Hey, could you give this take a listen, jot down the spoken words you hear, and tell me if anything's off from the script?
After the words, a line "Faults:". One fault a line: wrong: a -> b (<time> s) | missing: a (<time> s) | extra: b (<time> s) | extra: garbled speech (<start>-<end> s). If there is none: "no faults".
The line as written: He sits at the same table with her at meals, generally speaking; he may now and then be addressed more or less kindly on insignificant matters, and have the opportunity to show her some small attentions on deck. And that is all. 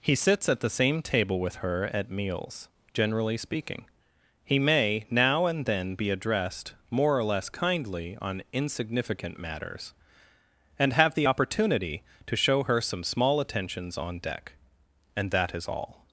He sits at the same table with her at meals, generally speaking; he may now and then be addressed more or less kindly on insignificant matters, and have the opportunity to show her some small attentions on deck. And that is all.
Faults:
no faults